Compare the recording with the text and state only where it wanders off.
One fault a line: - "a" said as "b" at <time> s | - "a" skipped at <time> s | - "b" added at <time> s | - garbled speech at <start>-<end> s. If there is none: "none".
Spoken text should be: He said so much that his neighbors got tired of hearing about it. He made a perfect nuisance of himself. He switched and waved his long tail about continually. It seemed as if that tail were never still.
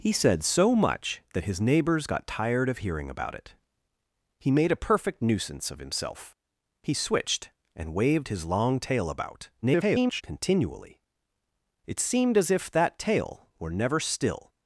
- garbled speech at 9.6-10.2 s